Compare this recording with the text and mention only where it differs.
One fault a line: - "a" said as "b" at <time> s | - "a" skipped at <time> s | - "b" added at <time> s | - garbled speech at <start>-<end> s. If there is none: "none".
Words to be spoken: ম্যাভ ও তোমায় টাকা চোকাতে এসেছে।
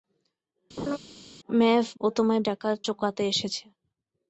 none